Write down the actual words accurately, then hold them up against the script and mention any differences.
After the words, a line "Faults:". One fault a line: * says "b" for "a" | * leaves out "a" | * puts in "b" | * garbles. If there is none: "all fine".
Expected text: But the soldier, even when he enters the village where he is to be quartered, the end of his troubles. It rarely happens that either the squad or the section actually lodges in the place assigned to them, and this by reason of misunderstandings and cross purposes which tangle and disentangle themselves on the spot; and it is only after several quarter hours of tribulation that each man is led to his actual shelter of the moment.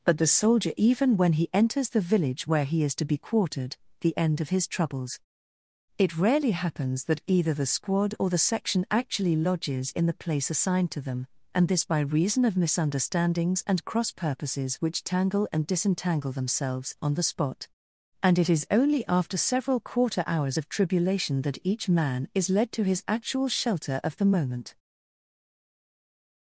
But the soldier, even when he enters the village where he is to be quartered, the end of his troubles. It rarely happens that either the squad or the section actually lodges in the place assigned to them, and this by reason of misunderstandings and cross purposes which tangle and disentangle themselves on the spot; and it is only after several quarter hours of tribulation that each man is led to his actual shelter of the moment.
Faults:
all fine